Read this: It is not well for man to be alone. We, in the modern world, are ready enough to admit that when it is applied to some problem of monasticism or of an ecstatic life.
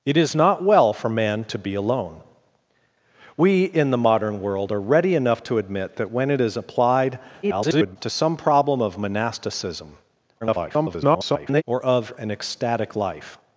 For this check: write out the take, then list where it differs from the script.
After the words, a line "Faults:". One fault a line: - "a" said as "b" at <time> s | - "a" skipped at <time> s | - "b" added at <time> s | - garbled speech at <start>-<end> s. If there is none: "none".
It is not well for man to be alone. We, in the modern world, are ready enough to admit that when it is applied [garbled] to some problem of monasticism [garbled] or of an ecstatic life.
Faults:
- garbled speech at 7.4-8.0 s
- garbled speech at 10.4-11.6 s